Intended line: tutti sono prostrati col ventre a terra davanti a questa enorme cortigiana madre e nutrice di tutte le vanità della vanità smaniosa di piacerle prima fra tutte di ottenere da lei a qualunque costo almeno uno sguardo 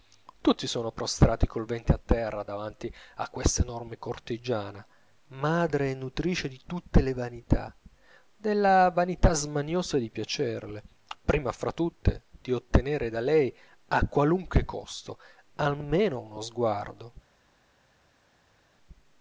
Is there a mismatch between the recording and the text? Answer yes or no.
no